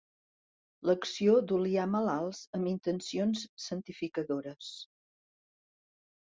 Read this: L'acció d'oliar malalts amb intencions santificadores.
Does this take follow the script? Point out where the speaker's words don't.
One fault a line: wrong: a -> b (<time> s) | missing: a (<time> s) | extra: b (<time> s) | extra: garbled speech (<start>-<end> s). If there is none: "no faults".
no faults